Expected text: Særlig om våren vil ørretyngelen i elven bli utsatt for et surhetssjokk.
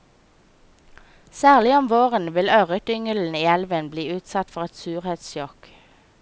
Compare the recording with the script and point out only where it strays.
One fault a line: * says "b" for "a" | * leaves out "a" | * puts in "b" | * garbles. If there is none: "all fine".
all fine